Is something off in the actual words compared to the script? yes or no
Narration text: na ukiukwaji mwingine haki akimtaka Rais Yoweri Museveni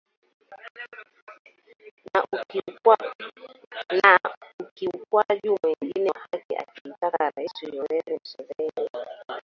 no